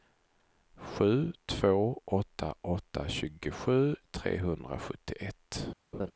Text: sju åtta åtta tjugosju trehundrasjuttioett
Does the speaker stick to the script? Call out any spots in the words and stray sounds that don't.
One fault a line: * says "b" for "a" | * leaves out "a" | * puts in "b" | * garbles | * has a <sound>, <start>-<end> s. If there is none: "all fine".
* puts in "två"
* has a laugh, 5.9-6.1 s